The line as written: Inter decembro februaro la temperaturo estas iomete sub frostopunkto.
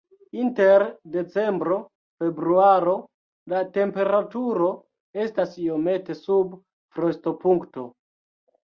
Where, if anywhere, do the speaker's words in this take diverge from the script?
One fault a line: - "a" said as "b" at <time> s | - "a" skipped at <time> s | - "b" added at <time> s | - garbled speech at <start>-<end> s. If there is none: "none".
none